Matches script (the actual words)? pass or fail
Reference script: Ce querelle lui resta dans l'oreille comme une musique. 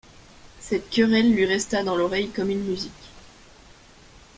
fail